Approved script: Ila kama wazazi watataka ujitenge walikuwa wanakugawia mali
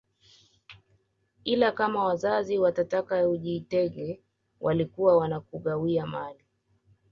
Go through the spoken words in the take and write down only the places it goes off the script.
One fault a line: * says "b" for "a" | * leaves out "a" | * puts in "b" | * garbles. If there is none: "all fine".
all fine